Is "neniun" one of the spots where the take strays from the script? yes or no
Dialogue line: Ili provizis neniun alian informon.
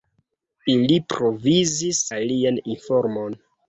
yes